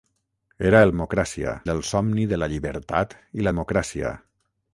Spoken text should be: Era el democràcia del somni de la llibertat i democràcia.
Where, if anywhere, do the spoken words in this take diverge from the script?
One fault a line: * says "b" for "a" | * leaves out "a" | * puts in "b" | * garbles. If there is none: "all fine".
all fine